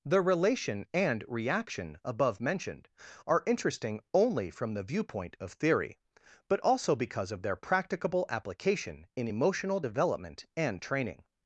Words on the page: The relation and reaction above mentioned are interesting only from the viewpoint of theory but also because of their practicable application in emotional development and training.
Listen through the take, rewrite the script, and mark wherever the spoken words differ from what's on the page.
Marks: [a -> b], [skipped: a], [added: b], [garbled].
The relation and reaction above mentioned are interesting only from the viewpoint of theory but also because of their practicable application in emotional development and training.